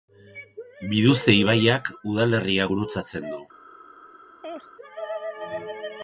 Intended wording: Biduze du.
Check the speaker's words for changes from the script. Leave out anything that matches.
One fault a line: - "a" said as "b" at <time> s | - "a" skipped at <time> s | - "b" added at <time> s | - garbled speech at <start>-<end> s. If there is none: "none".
- "ibaiak udalerria gurutzatzen" added at 1.4 s